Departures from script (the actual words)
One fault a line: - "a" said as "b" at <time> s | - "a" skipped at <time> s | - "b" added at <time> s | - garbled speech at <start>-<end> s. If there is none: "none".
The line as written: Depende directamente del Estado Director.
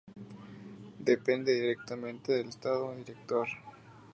none